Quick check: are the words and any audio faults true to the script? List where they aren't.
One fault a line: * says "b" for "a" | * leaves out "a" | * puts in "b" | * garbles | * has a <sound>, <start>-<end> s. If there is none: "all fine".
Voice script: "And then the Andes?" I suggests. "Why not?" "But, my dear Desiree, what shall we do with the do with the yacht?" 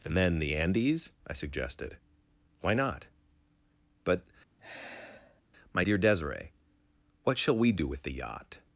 * says "suggested" for "suggests"
* has a sigh, 4.6-5.4 s
* leaves out "do with the"